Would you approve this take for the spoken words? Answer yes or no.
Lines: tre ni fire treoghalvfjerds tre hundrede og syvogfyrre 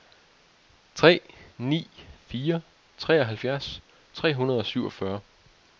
yes